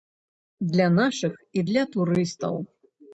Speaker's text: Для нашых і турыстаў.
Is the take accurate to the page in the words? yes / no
no